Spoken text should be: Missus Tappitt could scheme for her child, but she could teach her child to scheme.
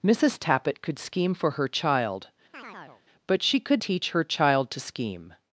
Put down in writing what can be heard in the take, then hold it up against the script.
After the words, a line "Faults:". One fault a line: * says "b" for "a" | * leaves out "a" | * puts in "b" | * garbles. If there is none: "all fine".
Missus Tappitt could scheme for her child, but she could teach her child to scheme.
Faults:
all fine